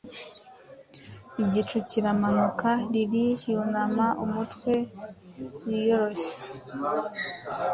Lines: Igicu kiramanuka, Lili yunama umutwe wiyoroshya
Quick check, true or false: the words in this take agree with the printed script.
true